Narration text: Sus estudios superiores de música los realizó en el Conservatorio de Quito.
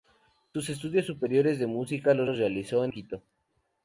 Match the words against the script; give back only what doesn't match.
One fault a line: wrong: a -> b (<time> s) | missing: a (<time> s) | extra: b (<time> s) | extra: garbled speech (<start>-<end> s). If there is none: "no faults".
extra: los (2.2 s)
missing: el Conservatorio de (2.9 s)